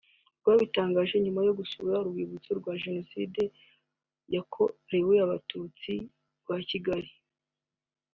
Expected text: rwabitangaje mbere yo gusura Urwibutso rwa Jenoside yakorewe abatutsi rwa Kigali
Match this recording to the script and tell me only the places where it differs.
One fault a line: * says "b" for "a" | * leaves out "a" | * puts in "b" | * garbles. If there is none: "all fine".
* says "nyuma" for "mbere"